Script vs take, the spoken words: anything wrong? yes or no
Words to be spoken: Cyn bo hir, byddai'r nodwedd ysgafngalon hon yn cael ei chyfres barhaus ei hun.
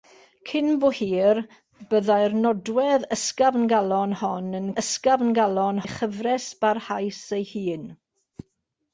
yes